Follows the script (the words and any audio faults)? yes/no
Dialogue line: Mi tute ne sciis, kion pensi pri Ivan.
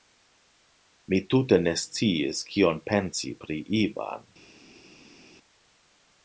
yes